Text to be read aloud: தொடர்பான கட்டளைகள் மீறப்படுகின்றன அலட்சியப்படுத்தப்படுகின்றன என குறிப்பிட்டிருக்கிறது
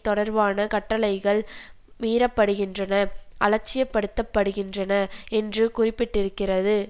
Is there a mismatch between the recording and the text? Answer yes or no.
yes